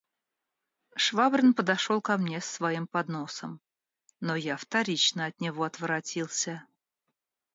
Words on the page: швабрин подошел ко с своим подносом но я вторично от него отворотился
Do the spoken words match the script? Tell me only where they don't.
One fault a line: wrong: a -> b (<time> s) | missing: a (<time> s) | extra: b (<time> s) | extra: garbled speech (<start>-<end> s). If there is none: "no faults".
extra: мне (2.2 s)